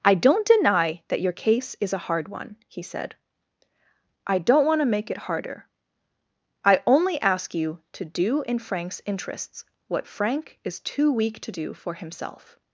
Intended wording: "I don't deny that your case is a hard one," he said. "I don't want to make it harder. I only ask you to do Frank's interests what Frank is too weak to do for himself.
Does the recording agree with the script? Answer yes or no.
no